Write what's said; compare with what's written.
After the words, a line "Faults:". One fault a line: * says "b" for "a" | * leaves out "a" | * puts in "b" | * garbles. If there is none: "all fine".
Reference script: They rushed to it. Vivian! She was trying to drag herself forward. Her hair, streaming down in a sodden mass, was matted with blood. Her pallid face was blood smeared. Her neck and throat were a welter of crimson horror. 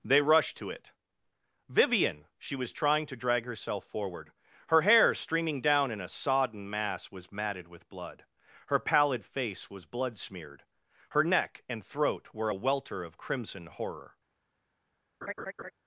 They rushed to it. Vivian! She was trying to drag herself forward. Her hair, streaming down in a sodden mass, was matted with blood. Her pallid face was blood smeared. Her neck and throat were a welter of crimson horror.
Faults:
all fine